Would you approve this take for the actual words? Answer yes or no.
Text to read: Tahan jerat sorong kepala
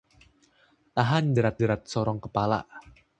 no